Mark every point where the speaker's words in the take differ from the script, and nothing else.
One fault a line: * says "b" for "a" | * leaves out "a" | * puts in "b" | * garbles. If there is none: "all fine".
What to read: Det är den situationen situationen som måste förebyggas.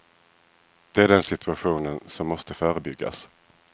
* leaves out "situationen"